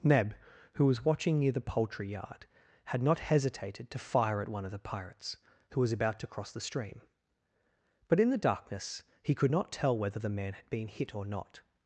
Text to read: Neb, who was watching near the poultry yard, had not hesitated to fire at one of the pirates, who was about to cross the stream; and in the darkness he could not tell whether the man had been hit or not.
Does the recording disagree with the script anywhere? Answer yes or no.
yes